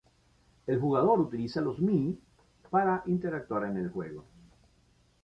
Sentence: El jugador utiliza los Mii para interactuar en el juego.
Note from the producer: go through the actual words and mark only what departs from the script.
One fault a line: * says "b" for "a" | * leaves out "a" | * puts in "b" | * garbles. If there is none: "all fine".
all fine